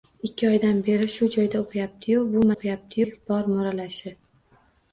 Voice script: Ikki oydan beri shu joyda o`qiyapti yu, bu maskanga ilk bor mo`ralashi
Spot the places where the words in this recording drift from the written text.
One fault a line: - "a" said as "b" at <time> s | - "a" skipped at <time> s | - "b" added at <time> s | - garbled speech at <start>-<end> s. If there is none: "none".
- "maskanga" said as "o`qiyapti" at 2.5 s